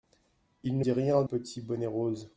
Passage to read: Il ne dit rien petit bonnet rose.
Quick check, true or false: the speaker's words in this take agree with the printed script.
true